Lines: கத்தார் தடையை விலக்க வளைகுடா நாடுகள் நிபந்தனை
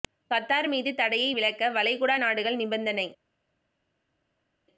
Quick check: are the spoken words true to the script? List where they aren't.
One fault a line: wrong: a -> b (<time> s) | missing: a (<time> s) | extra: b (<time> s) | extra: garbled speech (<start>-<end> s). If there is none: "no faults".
extra: மீது (0.7 s)